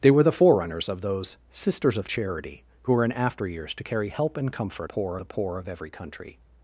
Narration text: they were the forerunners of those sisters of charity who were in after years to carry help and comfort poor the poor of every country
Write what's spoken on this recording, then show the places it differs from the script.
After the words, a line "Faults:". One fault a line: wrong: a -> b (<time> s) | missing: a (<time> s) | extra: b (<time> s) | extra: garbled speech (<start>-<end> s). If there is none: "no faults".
they were the forerunners of those sisters of charity who were in after years to carry help and comfort poor the poor of every country
Faults:
no faults